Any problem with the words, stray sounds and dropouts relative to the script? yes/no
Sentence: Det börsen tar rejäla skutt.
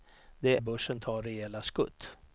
no